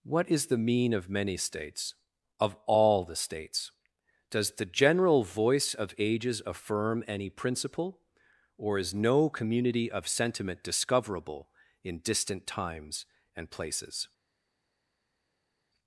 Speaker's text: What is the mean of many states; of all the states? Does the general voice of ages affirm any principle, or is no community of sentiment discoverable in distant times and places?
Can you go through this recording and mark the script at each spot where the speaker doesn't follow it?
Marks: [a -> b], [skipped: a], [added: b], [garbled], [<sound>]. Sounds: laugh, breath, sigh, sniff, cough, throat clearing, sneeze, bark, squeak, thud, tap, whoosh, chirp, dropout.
What is the mean of many states; of all the states? Does the general voice of ages affirm any principle, or is no community of sentiment discoverable in distant times and places?